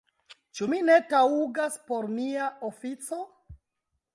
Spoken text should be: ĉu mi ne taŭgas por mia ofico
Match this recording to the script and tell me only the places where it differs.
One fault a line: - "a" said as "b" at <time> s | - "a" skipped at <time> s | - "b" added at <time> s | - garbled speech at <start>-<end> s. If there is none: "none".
none